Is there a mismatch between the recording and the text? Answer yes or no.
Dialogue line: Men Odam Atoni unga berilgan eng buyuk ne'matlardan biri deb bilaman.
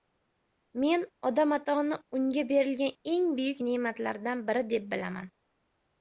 no